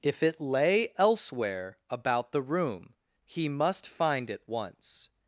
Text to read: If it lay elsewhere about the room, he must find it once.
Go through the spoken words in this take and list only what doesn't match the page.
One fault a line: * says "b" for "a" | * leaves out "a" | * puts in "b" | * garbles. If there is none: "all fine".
all fine